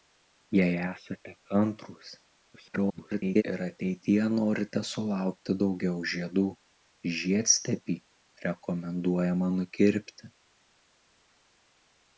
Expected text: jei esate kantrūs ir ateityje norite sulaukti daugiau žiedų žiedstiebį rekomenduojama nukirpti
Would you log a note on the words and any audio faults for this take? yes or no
yes